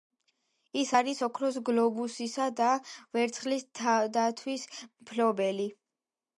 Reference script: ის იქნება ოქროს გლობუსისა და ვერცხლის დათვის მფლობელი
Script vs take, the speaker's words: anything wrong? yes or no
yes